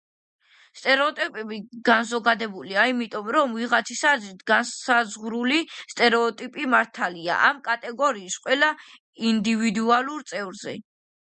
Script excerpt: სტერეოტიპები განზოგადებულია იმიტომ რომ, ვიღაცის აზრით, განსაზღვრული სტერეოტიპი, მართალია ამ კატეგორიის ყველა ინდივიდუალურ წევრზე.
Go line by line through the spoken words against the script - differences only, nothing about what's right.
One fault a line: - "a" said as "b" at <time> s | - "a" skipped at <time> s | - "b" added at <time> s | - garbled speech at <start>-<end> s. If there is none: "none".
none